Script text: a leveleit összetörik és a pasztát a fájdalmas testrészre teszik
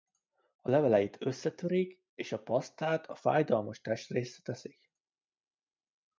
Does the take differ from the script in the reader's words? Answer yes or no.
no